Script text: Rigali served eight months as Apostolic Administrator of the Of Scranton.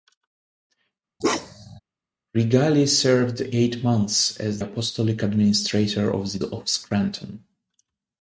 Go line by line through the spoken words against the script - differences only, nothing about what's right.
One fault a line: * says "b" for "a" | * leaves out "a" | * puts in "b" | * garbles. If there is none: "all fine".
all fine